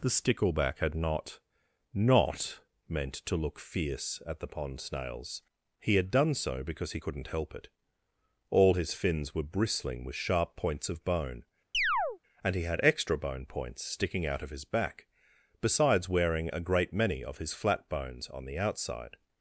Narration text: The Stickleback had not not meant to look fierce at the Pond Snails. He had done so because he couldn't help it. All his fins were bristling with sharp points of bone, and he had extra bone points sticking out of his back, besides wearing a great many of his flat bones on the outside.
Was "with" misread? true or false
false